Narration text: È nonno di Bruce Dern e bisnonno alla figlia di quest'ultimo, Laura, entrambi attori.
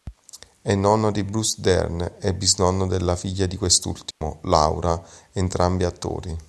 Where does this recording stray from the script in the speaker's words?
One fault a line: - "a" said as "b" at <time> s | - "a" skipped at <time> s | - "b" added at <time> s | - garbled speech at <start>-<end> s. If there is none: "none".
- "alla" said as "della" at 2.9 s